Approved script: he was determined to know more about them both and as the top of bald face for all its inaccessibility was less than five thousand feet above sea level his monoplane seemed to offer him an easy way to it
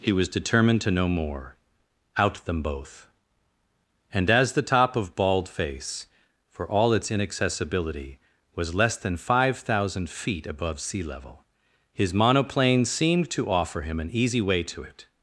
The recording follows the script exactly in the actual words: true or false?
false